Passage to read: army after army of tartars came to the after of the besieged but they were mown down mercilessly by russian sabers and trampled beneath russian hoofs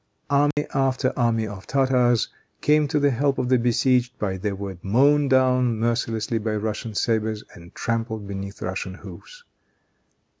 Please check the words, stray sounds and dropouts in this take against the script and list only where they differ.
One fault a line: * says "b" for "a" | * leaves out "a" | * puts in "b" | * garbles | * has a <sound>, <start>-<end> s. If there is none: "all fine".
* has a dropout, 0.5-0.6 s
* says "help" for "after"